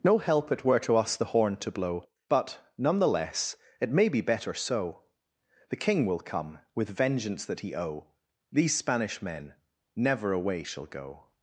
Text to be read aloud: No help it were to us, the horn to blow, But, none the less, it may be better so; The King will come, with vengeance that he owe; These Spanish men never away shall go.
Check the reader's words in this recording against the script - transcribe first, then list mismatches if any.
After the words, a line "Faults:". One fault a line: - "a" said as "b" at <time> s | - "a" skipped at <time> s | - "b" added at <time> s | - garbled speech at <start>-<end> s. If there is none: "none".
No help it were to us, the horn to blow, But, none the less, it may be better so; The King will come, with vengeance that he owe; These Spanish men never away shall go.
Faults:
none